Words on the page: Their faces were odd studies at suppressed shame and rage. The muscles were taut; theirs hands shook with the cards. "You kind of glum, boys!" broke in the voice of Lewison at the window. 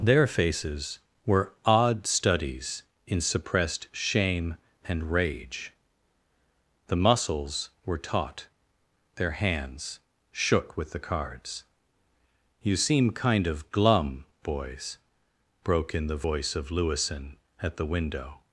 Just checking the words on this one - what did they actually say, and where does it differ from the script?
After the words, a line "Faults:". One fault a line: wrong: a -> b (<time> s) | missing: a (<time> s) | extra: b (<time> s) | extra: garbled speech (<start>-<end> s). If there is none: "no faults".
Their faces were odd studies in suppressed shame and rage. The muscles were taut; their hands shook with the cards. "You seem kind of glum, boys!" broke in the voice of Lewison at the window.
Faults:
wrong: at -> in (3.0 s)
wrong: theirs -> their (9.2 s)
extra: seem (12.8 s)